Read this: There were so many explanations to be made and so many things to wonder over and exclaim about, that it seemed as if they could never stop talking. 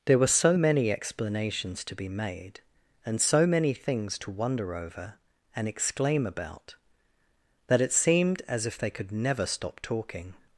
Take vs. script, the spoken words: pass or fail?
pass